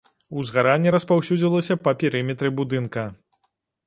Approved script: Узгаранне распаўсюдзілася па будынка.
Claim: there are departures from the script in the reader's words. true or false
true